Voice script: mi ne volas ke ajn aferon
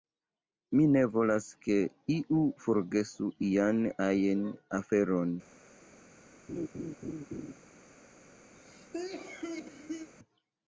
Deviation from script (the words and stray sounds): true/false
true